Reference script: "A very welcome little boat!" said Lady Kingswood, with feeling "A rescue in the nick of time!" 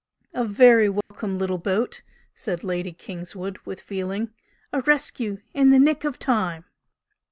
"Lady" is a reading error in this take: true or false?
false